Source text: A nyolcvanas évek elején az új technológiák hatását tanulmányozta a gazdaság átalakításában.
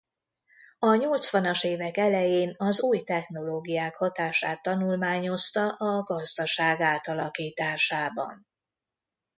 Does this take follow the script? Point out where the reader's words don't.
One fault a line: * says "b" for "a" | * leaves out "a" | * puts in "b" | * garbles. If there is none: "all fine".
all fine